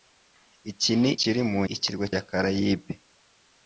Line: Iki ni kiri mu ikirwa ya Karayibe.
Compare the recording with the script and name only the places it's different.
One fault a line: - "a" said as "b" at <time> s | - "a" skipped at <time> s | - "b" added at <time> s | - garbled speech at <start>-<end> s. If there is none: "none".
none